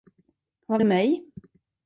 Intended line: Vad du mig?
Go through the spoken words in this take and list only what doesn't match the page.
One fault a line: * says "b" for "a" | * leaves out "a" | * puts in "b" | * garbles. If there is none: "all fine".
all fine